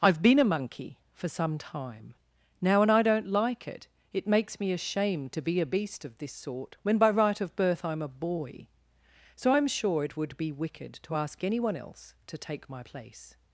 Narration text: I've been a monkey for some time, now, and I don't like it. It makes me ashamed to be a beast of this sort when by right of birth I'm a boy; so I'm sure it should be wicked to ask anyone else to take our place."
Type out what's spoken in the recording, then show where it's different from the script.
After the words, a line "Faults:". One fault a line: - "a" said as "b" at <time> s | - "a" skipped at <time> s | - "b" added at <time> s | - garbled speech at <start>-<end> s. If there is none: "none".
I've been a monkey for some time, now, and I don't like it. It makes me ashamed to be a beast of this sort when by right of birth I'm a boy; so I'm sure it would be wicked to ask anyone else to take my place."
Faults:
- "should" said as "would" at 10.2 s
- "our" said as "my" at 12.7 s